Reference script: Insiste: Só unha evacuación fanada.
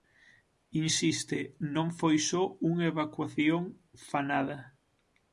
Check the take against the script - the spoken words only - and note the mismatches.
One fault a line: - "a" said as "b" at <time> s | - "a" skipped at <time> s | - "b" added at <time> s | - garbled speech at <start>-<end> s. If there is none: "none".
- "Non foi" added at 1.8 s